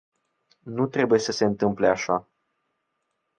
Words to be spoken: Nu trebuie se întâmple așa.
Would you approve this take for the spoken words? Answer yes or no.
no